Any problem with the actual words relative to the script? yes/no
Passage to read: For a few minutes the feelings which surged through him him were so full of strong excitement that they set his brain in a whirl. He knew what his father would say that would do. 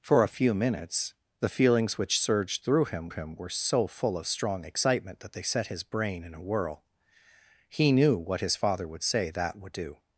no